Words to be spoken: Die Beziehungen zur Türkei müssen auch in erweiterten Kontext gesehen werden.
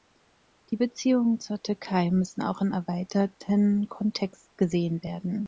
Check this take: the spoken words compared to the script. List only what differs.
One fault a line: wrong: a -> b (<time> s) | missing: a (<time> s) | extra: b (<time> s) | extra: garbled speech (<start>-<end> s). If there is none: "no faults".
no faults